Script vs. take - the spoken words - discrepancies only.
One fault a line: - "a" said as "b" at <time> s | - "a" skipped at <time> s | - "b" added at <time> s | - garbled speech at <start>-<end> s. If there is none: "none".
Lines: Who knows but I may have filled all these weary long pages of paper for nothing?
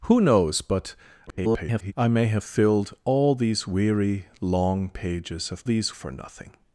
- garbled speech at 1.3-1.9 s
- "paper" said as "these" at 5.6 s